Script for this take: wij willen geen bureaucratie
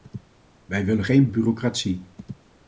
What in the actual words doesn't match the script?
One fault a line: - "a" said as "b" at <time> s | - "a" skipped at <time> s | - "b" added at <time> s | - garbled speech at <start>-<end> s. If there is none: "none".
none